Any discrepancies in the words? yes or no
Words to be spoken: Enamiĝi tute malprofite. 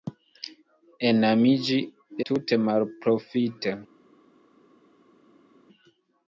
no